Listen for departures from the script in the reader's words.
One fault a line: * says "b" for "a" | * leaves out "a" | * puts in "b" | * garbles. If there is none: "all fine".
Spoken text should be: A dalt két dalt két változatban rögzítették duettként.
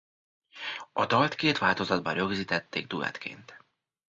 * leaves out "dalt két"